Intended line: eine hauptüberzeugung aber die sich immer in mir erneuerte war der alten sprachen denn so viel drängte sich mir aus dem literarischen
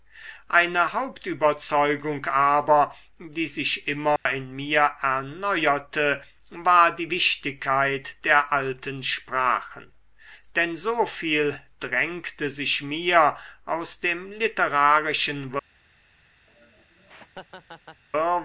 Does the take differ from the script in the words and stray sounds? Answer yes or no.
yes